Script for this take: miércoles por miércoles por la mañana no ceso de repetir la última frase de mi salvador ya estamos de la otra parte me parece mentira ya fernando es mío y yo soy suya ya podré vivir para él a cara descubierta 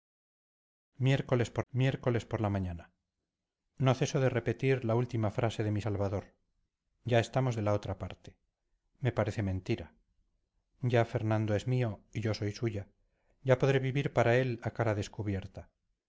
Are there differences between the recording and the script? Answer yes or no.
no